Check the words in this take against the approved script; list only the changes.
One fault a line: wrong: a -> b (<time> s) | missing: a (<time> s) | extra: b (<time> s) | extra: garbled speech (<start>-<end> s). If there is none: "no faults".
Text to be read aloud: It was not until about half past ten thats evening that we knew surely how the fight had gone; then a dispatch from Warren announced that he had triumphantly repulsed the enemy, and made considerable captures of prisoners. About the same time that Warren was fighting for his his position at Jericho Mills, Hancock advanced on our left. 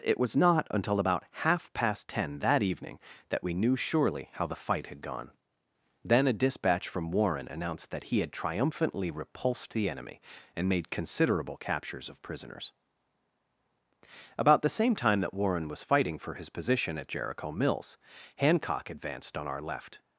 wrong: thats -> that (2.4 s)
missing: his (16.5 s)